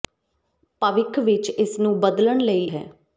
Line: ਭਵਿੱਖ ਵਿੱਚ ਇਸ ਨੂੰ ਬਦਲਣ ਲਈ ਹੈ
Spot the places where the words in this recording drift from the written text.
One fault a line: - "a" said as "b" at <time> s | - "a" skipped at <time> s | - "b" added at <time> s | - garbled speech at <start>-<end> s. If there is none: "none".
none